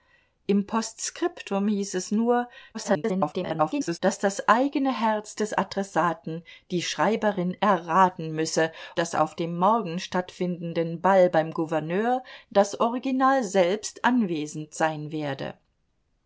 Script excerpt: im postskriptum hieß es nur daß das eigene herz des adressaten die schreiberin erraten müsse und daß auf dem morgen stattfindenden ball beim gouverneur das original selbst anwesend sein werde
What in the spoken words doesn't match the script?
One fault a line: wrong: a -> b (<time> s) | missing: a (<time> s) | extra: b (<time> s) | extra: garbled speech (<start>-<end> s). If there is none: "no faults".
extra: garbled speech (2.7-4.0 s)
missing: und (8.7 s)